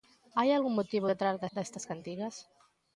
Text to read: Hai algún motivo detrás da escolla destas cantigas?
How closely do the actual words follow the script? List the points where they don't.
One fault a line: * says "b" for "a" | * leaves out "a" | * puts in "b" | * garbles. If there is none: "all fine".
* leaves out "escolla"